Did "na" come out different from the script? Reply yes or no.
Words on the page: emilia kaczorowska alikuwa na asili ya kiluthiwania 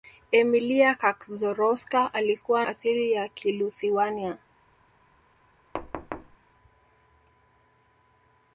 yes